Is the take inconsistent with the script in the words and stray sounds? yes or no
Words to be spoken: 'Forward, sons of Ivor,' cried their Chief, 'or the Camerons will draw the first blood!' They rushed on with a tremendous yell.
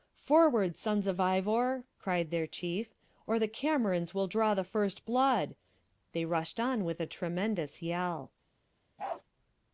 yes